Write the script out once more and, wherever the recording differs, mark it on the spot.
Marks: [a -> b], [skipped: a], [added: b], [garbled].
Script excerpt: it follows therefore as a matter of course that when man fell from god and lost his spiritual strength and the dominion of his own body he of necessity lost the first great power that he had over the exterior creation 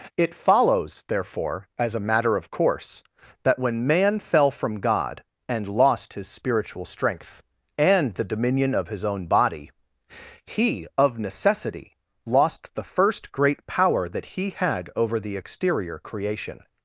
it follows therefore as a matter of course that when man fell from god and lost his spiritual strength and the dominion of his own body he of necessity lost the first great power that he had over the exterior creation